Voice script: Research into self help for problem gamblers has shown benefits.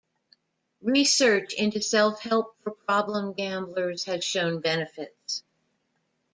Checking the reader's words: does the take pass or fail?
pass